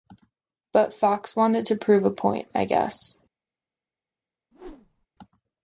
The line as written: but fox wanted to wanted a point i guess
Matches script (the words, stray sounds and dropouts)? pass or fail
fail